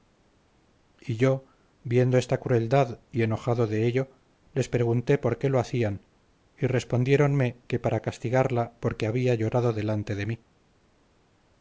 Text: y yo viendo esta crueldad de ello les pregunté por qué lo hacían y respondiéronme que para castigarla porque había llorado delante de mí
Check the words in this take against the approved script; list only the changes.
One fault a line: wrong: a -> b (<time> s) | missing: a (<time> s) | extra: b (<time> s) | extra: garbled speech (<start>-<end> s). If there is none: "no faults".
extra: y enojado (3.1 s)